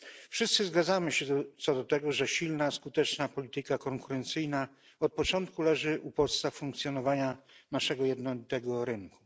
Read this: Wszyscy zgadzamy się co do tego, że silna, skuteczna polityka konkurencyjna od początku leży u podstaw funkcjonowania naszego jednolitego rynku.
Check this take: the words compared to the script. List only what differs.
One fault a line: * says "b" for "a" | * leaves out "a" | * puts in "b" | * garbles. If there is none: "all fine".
all fine